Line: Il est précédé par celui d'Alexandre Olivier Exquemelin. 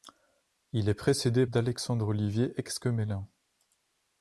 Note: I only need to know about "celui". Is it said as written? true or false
false